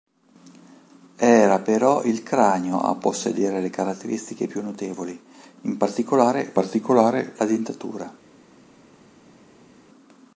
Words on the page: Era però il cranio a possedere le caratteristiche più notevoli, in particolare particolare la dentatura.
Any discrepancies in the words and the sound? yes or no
no